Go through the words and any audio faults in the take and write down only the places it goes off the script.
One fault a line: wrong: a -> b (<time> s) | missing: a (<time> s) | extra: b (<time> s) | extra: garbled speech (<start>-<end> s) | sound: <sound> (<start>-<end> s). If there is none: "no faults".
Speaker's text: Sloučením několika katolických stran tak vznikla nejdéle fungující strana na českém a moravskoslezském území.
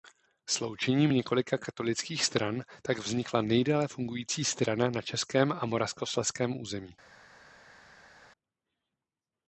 no faults